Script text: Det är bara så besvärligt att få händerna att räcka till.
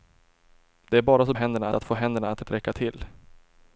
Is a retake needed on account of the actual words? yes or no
yes